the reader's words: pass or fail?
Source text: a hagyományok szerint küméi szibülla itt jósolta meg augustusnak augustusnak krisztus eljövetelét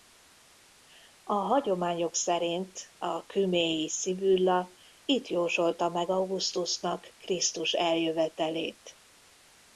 fail